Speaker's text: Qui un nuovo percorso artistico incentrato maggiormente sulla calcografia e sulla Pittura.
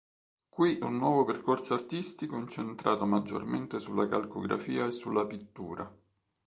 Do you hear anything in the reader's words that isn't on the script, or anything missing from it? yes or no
no